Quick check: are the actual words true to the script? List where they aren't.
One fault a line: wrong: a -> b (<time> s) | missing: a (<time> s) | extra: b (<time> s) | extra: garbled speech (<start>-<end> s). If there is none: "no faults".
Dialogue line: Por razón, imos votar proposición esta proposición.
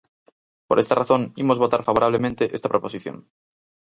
extra: esta (0.8 s)
wrong: proposición -> favorablemente (1.9 s)